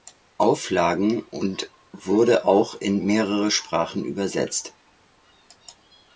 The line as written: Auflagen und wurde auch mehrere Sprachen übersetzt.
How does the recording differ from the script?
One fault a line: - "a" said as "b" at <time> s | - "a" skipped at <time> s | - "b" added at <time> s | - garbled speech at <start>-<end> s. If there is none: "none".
- "in" added at 2.8 s